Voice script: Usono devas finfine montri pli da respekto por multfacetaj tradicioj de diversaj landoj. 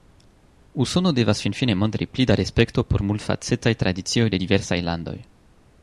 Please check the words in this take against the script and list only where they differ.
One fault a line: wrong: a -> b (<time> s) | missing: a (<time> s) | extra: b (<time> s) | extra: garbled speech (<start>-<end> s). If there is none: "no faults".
no faults